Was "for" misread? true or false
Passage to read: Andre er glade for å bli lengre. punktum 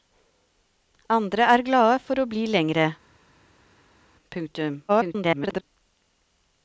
false